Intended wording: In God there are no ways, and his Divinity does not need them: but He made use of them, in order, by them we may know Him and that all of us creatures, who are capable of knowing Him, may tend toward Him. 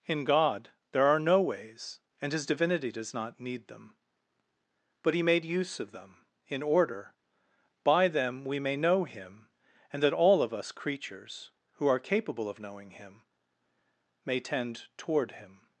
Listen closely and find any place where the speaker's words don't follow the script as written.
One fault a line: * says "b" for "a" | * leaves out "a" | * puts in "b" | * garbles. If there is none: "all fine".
all fine